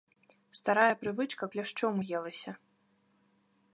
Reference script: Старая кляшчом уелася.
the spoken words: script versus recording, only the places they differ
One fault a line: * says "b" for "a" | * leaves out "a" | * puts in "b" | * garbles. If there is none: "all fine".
* puts in "прывычка"